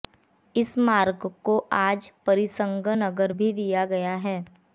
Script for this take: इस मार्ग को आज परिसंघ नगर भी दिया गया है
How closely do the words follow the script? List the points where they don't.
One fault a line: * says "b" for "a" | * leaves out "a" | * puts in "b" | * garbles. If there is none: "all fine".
all fine